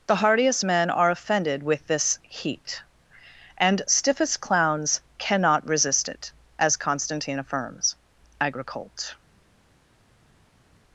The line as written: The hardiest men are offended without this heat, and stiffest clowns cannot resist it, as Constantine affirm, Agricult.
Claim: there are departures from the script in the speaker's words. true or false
true